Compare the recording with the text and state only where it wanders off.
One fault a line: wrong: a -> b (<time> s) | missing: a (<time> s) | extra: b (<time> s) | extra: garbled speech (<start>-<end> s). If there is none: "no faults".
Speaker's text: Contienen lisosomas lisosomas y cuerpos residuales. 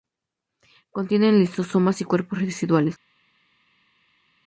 missing: lisosomas (2.0 s)